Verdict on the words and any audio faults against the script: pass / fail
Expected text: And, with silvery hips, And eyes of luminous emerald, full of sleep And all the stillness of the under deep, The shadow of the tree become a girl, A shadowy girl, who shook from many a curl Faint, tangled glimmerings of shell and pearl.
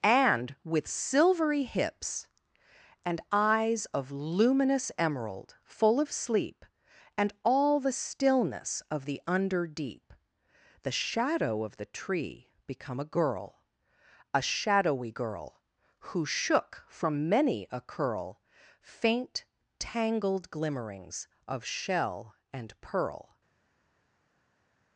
pass